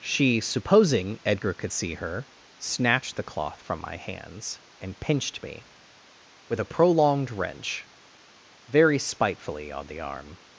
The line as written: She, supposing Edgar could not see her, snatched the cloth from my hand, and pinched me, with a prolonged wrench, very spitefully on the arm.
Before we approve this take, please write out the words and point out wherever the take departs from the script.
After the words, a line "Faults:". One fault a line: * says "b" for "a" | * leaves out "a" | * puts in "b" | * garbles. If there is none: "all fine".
She, supposing Edgar could see her, snatched the cloth from my hands, and pinched me, with a prolonged wrench, very spitefully on the arm.
Faults:
* leaves out "not"
* says "hands" for "hand"